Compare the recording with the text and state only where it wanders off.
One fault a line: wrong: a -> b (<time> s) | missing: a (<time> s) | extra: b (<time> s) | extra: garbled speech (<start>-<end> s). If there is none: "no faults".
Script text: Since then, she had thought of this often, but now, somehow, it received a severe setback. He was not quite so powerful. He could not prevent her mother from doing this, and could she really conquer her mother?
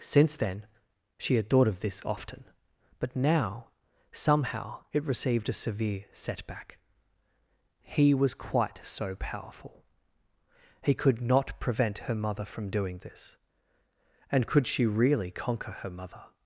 missing: not (8.3 s)